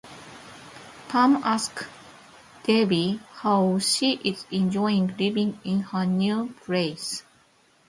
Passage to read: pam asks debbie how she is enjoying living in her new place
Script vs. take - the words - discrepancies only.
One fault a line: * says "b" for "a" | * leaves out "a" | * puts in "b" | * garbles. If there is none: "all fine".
all fine